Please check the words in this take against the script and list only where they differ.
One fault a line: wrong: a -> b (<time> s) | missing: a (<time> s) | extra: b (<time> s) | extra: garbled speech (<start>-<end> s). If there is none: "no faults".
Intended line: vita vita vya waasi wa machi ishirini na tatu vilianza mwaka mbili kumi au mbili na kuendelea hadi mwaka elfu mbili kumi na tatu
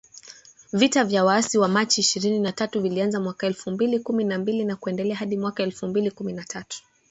missing: vita (1.0 s)
extra: elfu (3.5 s)
wrong: au -> na (4.2 s)